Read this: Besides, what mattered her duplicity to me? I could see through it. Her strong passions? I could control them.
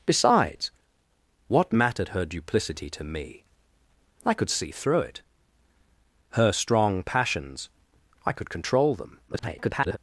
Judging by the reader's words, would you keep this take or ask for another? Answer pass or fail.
fail